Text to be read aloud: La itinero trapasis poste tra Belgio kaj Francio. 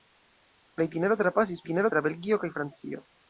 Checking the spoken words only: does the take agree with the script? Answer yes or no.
no